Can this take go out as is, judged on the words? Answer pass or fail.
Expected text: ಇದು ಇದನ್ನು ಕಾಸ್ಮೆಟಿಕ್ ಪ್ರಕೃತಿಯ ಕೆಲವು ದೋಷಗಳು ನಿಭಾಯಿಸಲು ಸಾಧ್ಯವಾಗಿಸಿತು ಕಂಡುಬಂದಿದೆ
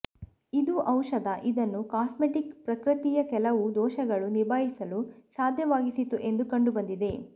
fail